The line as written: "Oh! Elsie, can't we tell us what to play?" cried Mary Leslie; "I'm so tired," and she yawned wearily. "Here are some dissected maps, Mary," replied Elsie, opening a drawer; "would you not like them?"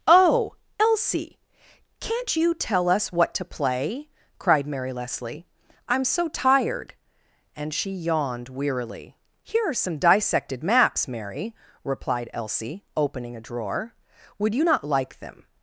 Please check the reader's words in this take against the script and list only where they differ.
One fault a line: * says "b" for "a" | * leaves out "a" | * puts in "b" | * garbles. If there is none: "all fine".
* says "you" for "we"